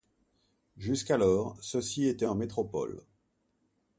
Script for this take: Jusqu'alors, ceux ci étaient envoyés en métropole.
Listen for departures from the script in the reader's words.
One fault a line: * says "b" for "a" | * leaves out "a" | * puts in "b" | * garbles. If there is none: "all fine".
* leaves out "envoyés"